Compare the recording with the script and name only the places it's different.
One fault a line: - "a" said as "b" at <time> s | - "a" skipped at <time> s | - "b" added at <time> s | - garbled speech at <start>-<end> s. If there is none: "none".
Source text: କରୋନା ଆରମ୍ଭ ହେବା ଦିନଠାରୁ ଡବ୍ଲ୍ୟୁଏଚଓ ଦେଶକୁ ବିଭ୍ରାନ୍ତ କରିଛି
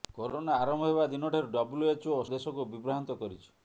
none